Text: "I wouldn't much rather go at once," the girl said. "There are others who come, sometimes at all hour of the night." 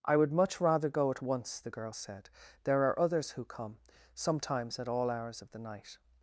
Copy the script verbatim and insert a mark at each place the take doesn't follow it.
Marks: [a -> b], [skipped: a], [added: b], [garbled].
"I [wouldn't -> would] much rather go at once," the girl said. "There are others who come, sometimes at all [hour -> hours] of the night."